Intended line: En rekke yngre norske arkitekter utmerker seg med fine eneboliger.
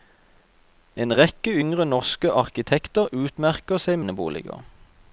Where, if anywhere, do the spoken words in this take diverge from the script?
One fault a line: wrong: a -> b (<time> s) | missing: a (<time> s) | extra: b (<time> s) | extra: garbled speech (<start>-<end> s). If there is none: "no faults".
missing: med fine (4.0 s)